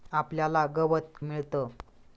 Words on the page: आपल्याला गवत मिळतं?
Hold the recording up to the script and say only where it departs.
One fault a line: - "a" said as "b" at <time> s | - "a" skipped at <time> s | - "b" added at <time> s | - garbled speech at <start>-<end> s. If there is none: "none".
none